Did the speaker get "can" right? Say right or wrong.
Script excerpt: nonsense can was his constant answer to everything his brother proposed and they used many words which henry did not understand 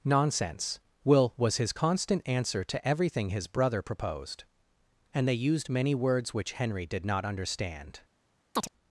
wrong